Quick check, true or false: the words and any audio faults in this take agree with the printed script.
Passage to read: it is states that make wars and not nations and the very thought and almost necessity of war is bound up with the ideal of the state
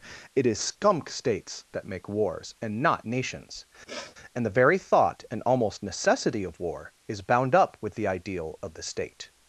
false